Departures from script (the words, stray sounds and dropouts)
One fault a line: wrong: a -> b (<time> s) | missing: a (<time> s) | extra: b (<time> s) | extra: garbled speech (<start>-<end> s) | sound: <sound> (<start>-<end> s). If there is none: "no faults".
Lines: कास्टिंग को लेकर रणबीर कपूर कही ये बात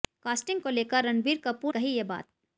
no faults